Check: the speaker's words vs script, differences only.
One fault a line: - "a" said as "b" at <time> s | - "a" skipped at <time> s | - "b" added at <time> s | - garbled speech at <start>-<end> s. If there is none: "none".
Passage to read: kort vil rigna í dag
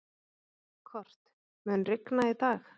- "vil" said as "mun" at 1.7 s